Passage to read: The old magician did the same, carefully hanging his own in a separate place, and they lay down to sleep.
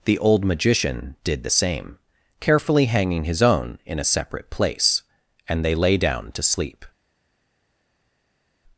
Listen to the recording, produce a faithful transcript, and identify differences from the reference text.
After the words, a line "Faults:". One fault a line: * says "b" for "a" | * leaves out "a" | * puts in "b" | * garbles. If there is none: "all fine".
The old magician did the same, carefully hanging his own in a separate place, and they lay down to sleep.
Faults:
all fine